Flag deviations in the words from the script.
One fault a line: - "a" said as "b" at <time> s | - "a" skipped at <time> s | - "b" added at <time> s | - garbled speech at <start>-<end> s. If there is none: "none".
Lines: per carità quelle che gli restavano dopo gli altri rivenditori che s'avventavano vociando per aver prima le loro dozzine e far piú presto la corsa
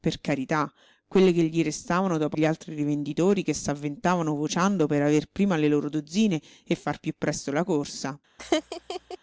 none